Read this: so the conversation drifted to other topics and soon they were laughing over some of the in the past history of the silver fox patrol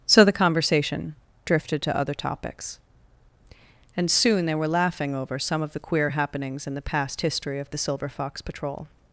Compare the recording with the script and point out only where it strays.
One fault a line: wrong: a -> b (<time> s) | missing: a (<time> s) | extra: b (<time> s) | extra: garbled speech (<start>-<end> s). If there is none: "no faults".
extra: queer happenings (5.8 s)